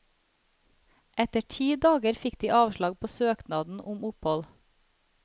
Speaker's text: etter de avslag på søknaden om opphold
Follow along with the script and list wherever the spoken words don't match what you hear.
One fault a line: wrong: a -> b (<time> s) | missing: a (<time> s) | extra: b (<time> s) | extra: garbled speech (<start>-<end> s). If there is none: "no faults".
extra: ti dager fikk (1.6 s)